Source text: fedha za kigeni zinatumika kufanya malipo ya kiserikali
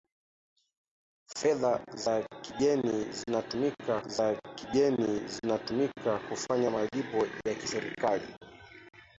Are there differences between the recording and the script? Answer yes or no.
yes